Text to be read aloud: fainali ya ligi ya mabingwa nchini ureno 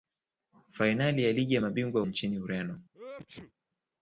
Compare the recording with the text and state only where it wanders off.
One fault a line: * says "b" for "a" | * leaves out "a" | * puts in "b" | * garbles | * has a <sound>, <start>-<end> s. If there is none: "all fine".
* has a sneeze, 2.9-3.5 s